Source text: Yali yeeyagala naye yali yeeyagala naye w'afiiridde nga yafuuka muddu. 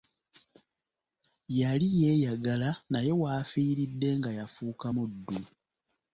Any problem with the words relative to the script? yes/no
yes